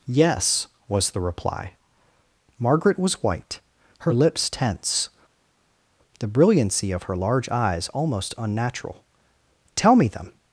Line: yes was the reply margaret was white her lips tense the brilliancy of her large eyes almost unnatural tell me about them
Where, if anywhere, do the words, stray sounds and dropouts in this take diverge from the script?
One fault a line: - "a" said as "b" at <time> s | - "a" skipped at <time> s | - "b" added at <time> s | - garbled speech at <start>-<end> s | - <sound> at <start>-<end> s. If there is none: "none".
- "about" skipped at 10.1 s